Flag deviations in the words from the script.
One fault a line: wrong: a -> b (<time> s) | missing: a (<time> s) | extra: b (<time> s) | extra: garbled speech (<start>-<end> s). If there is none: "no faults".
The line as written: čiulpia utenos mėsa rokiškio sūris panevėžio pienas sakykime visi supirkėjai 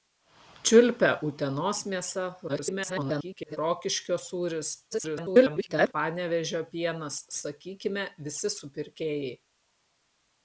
extra: garbled speech (2.5-3.6 s)
extra: garbled speech (4.9-5.9 s)